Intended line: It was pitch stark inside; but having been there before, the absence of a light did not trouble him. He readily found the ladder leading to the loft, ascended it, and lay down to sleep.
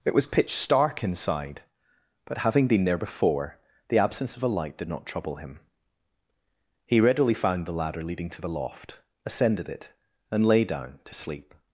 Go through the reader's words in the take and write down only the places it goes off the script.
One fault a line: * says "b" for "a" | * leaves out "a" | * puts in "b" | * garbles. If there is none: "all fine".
all fine